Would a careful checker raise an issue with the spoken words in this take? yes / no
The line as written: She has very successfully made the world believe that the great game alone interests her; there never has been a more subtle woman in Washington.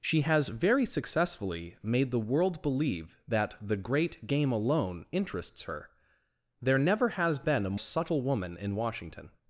yes